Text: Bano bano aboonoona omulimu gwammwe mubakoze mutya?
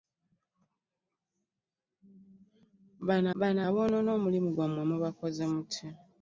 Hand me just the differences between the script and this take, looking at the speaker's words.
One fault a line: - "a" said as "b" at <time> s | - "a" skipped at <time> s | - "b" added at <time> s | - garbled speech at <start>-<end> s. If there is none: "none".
none